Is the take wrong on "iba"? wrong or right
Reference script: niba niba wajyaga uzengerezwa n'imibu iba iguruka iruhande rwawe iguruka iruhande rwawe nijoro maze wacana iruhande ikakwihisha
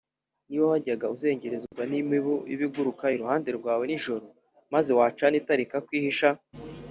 right